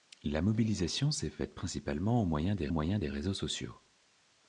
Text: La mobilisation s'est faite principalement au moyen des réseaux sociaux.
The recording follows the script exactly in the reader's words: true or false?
false